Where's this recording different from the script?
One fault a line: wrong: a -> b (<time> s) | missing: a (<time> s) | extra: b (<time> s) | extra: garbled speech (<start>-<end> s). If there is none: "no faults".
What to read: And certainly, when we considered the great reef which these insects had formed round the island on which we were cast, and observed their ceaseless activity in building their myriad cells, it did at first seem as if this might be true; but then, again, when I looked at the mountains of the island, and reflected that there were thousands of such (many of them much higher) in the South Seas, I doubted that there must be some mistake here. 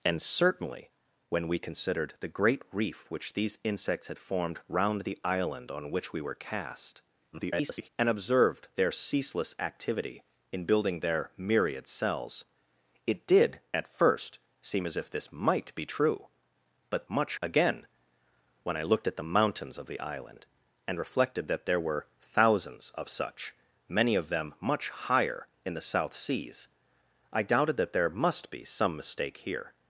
extra: garbled speech (7.3-7.9 s)
wrong: then -> much (17.1 s)